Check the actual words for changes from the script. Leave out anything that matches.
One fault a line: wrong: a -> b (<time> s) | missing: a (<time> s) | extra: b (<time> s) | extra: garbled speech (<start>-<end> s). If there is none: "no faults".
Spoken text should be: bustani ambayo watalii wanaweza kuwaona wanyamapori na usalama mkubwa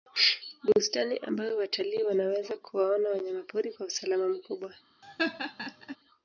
wrong: na -> kwa (3.7 s)